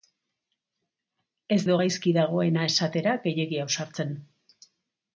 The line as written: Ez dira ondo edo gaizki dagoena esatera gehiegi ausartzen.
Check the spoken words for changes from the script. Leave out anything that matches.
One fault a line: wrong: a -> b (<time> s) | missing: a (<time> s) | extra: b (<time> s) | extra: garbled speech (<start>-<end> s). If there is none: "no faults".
missing: dira ondo (1.6 s)